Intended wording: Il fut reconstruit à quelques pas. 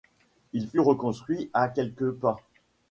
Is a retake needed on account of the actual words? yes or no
no